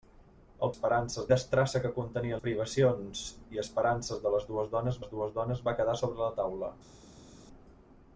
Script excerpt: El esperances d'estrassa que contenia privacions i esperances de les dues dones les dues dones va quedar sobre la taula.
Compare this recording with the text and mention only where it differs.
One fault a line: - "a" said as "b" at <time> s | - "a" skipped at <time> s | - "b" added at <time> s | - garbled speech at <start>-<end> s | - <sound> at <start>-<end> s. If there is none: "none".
none